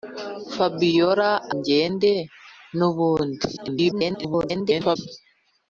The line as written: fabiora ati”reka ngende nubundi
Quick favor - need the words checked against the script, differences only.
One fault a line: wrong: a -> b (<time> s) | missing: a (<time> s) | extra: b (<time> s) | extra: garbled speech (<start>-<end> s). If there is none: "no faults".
missing: ati”reka (1.3 s)
extra: garbled speech (3.6-5.0 s)